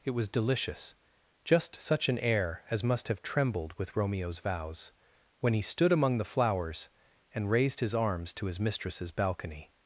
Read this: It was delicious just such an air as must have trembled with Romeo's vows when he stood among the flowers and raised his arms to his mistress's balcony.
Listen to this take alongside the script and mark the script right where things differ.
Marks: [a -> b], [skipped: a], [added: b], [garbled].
It was delicious just such an air as must have trembled with Romeo's vows when he stood among the flowers and raised his arms to his mistress's balcony.